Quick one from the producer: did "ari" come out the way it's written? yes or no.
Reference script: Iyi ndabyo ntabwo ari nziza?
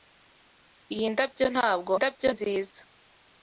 no